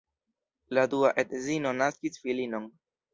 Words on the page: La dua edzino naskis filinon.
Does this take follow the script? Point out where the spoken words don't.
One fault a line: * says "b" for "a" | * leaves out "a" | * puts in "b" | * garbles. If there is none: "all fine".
all fine